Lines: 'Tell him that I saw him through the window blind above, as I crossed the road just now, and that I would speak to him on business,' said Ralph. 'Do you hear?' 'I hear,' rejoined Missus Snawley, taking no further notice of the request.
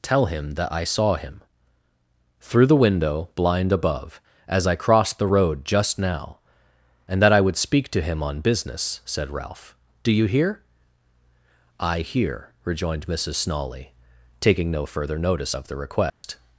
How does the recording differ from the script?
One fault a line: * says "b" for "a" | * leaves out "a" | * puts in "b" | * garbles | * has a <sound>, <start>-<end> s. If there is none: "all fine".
* has a dropout, 16.1-16.2 s